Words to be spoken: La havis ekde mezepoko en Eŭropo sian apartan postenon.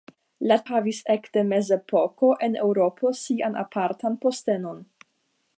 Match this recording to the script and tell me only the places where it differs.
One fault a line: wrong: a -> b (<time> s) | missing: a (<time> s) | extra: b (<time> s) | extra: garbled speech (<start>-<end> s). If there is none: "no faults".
no faults